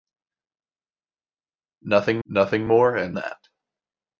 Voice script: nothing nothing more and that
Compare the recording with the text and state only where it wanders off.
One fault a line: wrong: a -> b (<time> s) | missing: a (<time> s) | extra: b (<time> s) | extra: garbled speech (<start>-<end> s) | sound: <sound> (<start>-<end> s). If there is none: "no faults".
no faults